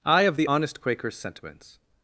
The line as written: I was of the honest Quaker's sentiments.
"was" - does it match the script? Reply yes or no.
no